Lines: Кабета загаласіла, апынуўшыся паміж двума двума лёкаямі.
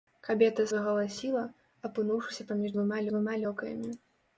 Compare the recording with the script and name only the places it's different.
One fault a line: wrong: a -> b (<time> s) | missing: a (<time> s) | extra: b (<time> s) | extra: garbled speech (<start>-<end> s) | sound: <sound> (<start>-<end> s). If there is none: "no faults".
no faults